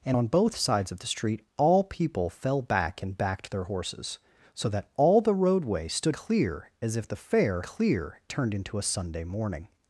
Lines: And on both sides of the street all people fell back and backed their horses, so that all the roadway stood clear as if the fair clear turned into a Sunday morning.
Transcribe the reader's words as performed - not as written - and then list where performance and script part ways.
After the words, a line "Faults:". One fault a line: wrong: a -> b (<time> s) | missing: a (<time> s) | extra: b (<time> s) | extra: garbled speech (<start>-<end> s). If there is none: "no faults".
And on both sides of the street all people fell back and backed their horses, so that all the roadway stood clear as if the fair clear turned into a Sunday morning.
Faults:
no faults